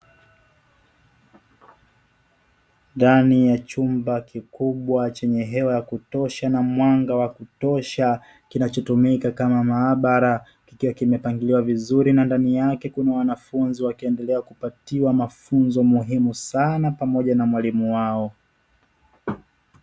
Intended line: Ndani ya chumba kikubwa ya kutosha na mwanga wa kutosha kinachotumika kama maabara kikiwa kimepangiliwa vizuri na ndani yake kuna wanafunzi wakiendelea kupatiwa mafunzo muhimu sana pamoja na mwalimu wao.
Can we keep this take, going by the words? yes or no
no